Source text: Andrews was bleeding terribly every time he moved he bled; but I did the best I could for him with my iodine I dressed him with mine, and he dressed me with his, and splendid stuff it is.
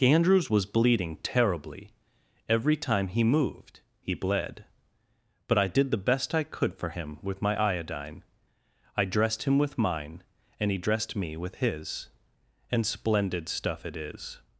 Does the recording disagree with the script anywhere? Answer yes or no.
no